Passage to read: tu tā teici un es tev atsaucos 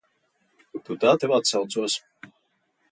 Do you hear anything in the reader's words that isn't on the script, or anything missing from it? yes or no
yes